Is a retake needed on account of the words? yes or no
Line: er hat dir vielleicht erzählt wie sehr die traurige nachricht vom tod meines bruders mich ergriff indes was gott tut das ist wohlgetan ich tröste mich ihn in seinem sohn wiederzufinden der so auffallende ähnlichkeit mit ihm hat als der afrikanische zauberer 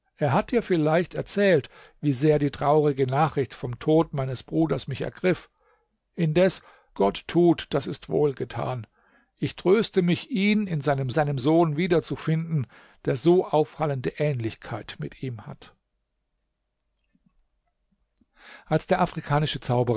yes